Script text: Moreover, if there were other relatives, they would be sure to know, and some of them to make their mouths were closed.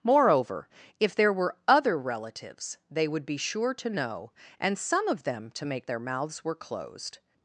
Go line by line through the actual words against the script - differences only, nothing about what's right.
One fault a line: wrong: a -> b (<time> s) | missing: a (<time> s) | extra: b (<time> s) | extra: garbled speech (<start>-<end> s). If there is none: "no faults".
no faults